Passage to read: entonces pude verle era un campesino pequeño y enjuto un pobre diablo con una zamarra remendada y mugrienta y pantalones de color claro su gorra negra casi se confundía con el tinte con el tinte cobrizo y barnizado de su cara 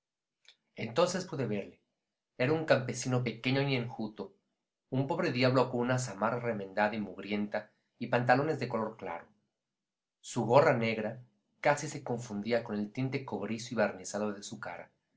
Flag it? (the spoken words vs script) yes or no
yes